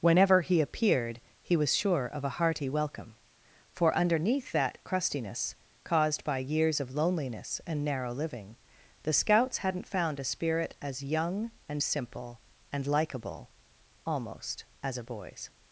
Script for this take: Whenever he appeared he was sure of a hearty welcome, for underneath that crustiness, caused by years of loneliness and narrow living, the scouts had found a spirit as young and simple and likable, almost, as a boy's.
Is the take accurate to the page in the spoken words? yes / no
no